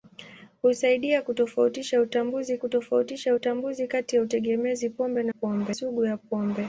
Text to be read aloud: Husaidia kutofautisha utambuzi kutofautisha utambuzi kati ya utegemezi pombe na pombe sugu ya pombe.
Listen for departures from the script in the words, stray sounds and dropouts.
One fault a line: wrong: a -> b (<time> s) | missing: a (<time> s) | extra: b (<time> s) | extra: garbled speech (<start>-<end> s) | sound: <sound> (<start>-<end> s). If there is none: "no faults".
no faults